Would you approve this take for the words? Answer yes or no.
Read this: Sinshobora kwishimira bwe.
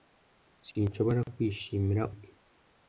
yes